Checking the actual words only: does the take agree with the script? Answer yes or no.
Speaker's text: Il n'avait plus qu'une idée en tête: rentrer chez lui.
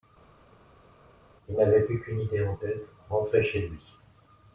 yes